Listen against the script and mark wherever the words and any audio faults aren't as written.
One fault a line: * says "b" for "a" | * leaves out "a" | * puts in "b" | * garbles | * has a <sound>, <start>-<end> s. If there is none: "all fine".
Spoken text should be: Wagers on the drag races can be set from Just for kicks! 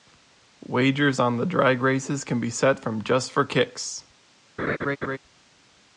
* has a laugh, 4.6-5.2 s